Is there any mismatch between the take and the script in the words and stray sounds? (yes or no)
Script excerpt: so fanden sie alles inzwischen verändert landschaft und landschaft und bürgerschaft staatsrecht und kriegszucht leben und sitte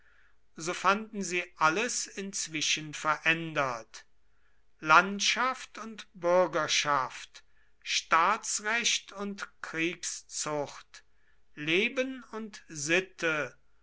yes